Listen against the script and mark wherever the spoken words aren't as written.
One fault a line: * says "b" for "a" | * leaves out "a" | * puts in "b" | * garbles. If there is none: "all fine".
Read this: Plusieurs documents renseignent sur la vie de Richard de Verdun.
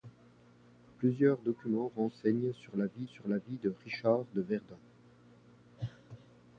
* puts in "sur la vie"